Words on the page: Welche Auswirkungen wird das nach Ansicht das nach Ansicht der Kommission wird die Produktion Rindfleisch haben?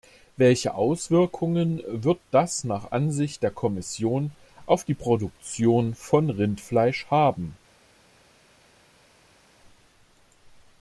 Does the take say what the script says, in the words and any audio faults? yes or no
no